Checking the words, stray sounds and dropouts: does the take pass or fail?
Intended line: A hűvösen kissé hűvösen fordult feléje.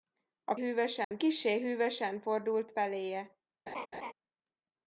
fail